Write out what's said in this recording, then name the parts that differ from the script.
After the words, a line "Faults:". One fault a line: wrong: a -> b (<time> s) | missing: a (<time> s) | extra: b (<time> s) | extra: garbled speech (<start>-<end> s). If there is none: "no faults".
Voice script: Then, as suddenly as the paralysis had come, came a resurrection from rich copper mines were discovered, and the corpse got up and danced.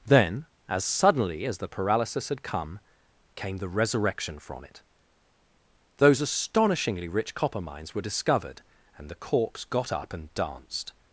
Then, as suddenly as the paralysis had come, came the resurrection from it. Those astonishingly rich copper mines were discovered, and the corpse got up and danced.
Faults:
wrong: a -> the (3.6 s)
extra: it Those astonishingly (4.6 s)